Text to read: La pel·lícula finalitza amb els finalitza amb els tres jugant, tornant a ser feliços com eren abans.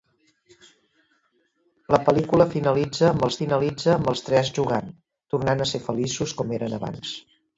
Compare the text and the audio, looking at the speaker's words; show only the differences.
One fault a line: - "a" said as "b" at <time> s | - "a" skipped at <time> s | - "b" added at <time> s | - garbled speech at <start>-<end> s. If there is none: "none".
none